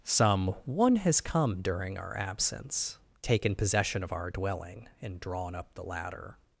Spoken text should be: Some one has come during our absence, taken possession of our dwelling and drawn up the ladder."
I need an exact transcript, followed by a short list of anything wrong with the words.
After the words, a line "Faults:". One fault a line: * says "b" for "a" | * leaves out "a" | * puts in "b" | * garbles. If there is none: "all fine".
Some one has come during our absence, taken possession of our dwelling and drawn up the ladder."
Faults:
all fine